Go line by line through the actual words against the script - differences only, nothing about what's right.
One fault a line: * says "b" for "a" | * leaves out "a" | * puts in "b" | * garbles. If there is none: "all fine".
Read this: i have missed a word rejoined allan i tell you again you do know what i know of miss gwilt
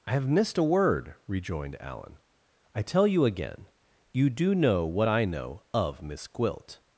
all fine